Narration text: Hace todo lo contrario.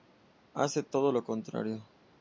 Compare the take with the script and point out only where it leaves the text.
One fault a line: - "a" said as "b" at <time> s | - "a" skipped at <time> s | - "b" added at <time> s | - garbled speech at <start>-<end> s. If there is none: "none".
none